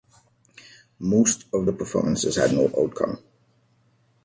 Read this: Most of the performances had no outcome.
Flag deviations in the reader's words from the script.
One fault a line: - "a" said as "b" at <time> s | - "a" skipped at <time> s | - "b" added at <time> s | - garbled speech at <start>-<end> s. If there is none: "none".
none